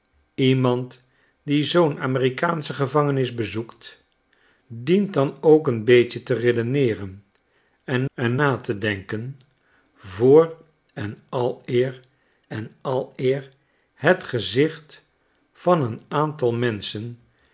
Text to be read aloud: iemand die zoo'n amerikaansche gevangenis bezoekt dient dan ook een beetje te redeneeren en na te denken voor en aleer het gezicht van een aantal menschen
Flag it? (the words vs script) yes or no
yes